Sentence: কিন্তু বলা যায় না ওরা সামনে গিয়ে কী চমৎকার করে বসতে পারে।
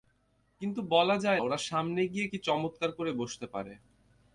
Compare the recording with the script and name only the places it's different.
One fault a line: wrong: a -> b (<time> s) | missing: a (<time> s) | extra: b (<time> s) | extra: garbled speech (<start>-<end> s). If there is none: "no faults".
missing: না (1.4 s)